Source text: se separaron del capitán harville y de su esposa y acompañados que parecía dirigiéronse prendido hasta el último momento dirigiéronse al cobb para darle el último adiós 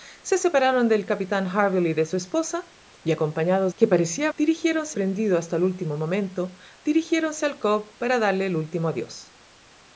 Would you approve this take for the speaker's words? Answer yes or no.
yes